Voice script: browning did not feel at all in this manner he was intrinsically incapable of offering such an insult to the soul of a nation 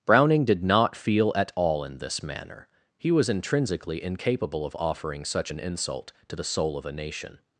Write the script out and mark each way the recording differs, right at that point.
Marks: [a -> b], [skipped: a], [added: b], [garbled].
browning did not feel at all in this manner he was intrinsically incapable of offering such an insult to the soul of a nation